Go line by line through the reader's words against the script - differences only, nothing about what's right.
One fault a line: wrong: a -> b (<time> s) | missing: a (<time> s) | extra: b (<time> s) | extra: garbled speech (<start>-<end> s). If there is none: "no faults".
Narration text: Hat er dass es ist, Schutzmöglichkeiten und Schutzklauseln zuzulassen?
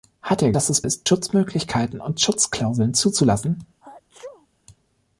no faults